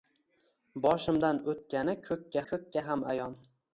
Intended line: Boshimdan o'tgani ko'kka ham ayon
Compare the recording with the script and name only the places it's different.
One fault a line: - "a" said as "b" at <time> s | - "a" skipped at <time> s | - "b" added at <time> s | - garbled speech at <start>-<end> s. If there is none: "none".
- "ko'kka" added at 2.5 s